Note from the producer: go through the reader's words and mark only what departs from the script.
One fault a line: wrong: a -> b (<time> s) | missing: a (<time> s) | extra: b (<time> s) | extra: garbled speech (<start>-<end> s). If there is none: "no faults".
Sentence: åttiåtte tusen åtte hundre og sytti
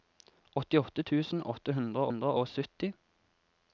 extra: hundre (2.1 s)